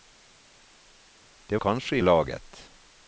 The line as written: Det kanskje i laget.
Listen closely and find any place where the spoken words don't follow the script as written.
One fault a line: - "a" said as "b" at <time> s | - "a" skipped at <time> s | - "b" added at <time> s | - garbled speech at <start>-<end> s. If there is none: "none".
none